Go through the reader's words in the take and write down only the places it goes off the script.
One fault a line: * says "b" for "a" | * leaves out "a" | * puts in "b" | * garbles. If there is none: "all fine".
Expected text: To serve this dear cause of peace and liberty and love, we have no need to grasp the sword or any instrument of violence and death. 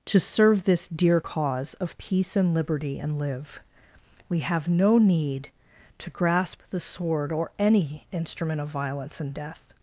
* says "live" for "love"